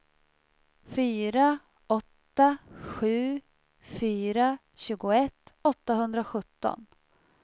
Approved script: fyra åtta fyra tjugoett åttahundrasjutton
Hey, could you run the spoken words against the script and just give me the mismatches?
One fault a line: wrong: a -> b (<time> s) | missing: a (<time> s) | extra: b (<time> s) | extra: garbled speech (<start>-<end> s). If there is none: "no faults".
extra: sju (2.8 s)